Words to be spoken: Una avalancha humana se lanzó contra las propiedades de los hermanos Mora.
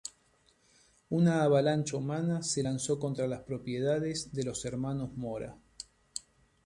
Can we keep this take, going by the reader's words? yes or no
yes